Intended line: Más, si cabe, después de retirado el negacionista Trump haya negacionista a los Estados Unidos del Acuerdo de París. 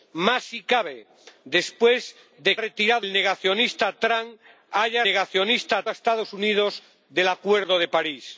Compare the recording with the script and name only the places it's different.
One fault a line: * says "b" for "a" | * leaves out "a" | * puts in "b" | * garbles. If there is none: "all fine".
all fine